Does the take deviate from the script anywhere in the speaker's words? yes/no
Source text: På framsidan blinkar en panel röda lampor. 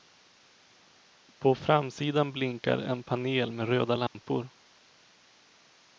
yes